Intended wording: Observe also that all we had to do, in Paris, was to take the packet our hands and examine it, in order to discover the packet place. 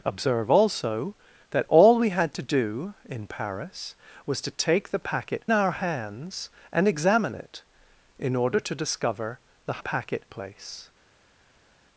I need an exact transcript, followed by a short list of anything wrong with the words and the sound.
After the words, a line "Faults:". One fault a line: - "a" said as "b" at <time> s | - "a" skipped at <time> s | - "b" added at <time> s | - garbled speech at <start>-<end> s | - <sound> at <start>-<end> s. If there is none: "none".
Observe also that all we had to do, in Paris, was to take the packet our hands and examine it, in order to discover the packet place.
Faults:
none